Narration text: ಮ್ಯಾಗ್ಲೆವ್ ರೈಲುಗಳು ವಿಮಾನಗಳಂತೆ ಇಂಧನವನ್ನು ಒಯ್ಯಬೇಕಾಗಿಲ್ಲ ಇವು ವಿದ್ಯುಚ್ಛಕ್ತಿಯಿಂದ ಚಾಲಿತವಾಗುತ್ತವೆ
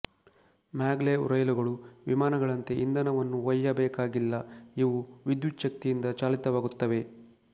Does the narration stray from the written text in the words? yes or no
no